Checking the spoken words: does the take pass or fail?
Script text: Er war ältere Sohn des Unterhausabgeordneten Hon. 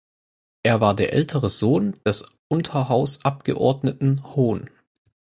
fail